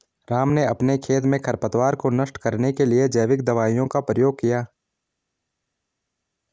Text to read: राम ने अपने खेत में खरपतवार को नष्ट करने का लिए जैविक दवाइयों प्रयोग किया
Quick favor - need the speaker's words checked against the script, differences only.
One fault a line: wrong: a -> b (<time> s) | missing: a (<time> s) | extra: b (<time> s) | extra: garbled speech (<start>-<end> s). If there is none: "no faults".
wrong: का -> के (2.7 s)
extra: का (3.9 s)